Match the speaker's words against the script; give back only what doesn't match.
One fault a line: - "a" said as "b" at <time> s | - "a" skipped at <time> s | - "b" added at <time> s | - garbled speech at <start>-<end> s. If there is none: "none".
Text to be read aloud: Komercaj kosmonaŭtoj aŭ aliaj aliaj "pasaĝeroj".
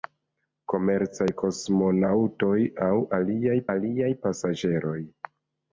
none